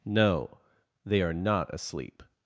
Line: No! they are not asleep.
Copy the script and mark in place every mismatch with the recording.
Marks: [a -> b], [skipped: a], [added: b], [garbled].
No! they are not asleep.